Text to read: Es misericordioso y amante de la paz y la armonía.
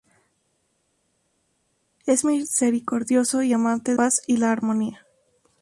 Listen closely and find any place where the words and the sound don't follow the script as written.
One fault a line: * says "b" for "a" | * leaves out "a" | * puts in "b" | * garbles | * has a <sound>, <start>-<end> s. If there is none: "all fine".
* leaves out "de la"